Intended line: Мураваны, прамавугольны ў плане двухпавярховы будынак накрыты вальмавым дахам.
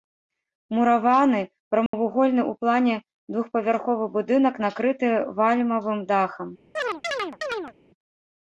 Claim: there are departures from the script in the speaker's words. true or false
false